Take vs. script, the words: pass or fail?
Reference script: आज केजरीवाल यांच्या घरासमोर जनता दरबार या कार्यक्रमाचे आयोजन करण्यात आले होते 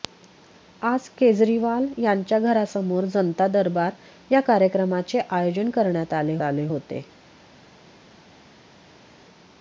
fail